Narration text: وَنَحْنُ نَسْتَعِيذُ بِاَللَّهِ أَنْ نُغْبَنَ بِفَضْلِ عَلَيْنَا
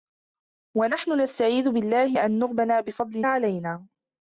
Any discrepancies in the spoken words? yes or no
no